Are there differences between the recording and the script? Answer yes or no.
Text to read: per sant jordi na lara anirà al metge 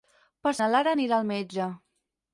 yes